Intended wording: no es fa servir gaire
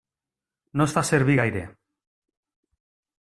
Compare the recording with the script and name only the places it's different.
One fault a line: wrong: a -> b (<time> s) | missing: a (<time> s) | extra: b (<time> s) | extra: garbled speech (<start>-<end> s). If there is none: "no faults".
no faults